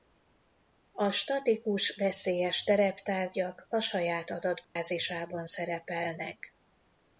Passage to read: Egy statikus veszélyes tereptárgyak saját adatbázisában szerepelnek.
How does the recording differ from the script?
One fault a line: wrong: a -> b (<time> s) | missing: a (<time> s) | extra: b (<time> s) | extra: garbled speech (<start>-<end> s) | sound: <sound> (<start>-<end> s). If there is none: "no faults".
wrong: Egy -> A (0.9 s)
extra: a (3.7 s)
sound: dropout (4.6-4.8 s)